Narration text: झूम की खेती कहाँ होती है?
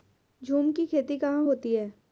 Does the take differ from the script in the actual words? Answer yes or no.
no